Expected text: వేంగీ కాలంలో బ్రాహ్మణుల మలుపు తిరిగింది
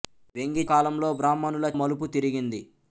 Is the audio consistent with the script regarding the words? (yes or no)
yes